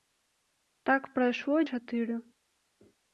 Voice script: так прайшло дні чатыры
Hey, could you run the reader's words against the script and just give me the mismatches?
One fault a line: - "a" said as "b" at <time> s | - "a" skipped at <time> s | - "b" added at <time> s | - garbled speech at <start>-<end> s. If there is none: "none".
- "дні" skipped at 1.6 s